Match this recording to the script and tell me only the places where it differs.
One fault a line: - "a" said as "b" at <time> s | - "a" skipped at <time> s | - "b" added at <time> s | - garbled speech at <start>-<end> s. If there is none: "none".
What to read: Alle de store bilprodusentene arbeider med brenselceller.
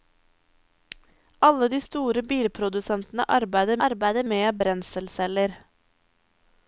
- "arbeider" added at 3.9 s